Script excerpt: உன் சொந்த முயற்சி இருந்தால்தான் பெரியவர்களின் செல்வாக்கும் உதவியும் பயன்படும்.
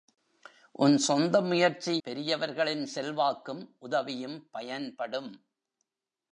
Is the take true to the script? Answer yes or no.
no